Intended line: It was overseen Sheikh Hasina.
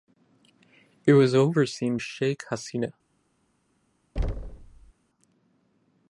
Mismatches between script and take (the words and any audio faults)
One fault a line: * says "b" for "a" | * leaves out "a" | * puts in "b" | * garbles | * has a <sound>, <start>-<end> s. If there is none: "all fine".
* has a thud, 4.2-4.9 s